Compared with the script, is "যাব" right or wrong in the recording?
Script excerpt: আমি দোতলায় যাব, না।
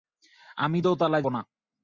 wrong